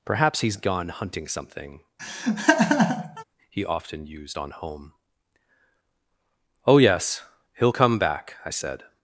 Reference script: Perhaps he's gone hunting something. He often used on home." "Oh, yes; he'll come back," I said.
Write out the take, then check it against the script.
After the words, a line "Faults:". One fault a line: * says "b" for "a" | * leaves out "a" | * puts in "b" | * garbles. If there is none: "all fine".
Perhaps he's gone hunting something. He often used on home." "Oh, yes; he'll come back," I said.
Faults:
all fine